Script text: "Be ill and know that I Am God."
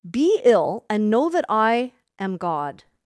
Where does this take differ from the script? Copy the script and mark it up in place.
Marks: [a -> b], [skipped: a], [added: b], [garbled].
"Be ill and know that I Am God."